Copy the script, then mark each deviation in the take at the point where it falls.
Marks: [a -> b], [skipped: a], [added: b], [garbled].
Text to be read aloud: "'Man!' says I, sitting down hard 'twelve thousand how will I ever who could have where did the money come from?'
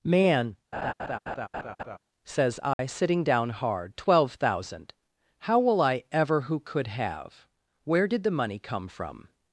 "'Man!' says I, sitting down hard 'twelve thousand how will I ever who could have where did the money come from?'